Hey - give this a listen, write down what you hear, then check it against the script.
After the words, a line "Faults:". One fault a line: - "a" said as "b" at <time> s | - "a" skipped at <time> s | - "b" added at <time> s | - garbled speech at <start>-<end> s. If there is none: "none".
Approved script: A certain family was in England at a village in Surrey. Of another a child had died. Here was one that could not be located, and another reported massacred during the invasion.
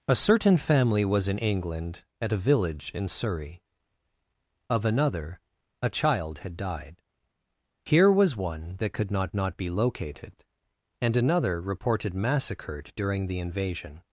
A certain family was in England at a village in Surrey. Of another a child had died. Here was one that could not not be located, and another reported massacred during the invasion.
Faults:
- "not" added at 9.3 s